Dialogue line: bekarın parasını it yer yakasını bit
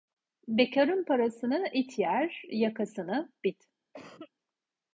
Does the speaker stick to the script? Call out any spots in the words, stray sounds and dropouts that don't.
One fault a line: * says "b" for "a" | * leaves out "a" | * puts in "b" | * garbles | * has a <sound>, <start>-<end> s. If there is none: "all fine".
* has a cough, 3.9-4.3 s